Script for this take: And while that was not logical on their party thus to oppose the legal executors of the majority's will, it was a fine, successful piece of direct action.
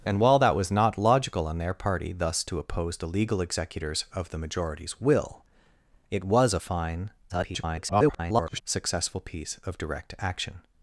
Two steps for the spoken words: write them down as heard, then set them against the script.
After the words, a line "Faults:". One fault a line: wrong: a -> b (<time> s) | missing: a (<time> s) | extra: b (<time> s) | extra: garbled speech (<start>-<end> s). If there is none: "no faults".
And while that was not logical on their party thus to oppose the legal executors of the majority's will, it was a fine, [garbled] successful piece of direct action.
Faults:
extra: garbled speech (7.3-8.6 s)